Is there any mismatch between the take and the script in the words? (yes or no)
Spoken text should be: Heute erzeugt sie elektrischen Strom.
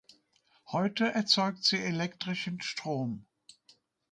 no